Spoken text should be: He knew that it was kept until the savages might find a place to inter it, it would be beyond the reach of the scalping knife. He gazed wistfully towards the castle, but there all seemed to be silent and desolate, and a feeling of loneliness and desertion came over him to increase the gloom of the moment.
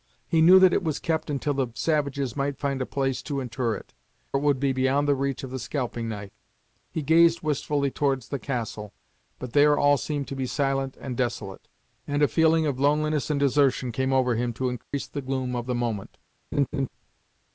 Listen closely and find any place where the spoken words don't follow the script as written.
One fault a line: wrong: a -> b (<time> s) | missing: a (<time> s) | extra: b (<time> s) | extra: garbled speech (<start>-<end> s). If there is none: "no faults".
no faults